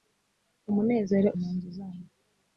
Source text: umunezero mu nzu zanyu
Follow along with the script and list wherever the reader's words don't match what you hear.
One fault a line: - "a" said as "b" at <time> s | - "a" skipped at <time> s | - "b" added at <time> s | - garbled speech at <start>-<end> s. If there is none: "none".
none